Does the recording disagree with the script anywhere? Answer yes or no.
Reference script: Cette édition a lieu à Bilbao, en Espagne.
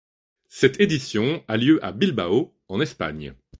no